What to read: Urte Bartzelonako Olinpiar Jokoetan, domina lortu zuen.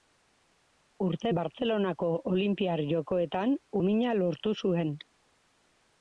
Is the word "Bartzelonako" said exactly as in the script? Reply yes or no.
yes